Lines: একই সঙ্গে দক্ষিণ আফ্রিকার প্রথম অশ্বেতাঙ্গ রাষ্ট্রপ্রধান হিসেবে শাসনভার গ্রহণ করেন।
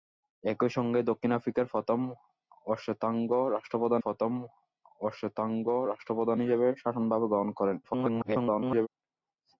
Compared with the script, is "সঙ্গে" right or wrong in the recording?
right